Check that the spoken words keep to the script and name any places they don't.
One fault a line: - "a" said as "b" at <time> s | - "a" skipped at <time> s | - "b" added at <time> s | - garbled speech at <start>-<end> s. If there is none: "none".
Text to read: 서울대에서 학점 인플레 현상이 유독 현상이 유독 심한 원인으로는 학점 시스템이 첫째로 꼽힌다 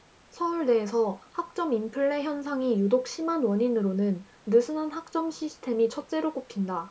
- "현상이 유독" skipped at 3.1 s
- "느슨한" added at 4.4 s